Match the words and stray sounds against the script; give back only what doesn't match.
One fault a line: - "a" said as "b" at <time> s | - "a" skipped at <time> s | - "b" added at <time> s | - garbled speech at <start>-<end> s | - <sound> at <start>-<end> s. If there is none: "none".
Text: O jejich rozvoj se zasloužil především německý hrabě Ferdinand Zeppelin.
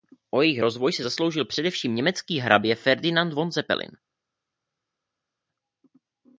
- "von" added at 3.3 s